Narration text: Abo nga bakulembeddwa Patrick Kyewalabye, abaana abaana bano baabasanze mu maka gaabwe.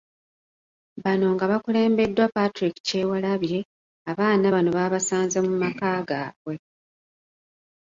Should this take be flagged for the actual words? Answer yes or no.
yes